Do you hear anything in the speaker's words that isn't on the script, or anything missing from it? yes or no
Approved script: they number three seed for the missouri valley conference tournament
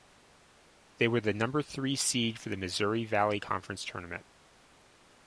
yes